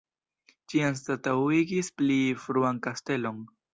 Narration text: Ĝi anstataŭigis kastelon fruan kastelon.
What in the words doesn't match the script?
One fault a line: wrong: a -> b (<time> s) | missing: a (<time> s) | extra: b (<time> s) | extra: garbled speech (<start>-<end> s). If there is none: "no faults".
wrong: kastelon -> pli (2.0 s)